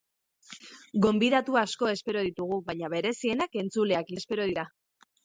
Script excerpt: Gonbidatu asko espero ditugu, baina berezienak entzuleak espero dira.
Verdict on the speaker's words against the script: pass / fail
pass